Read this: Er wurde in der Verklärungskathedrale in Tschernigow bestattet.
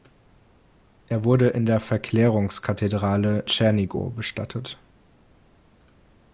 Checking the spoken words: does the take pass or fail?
fail